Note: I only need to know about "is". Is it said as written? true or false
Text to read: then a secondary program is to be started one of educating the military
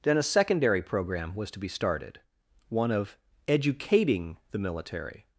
false